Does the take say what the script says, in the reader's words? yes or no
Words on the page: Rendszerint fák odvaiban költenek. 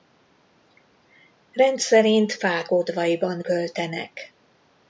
yes